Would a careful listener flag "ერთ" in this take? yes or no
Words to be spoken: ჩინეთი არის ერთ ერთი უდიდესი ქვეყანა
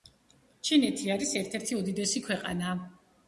no